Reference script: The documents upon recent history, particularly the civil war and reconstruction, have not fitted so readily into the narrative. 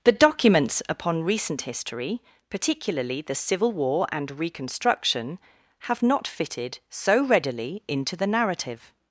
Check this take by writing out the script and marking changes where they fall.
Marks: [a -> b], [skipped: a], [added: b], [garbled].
The documents upon recent history, particularly the civil war and reconstruction, have not fitted so readily into the narrative.